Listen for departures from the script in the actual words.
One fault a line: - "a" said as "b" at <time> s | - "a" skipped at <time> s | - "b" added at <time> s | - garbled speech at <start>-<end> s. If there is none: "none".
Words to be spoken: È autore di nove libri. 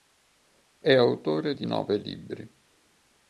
none